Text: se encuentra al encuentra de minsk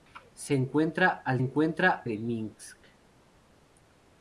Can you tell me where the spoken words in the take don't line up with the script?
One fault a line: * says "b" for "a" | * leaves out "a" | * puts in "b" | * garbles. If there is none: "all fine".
all fine